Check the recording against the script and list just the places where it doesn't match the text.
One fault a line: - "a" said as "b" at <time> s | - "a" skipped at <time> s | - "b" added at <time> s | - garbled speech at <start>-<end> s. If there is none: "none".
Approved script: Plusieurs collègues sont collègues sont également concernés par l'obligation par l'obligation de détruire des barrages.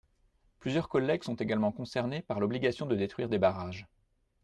- "collègues sont" skipped at 1.4 s
- "par l'obligation" skipped at 2.9 s